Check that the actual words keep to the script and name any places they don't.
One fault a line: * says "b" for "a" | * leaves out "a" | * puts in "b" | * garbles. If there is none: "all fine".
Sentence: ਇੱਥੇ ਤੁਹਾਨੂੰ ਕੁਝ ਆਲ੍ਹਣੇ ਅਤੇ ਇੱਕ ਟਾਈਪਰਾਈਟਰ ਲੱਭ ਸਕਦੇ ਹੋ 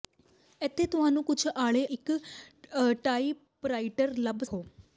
* leaves out "ਅਤੇ"
* leaves out "ਸਕਦੇ"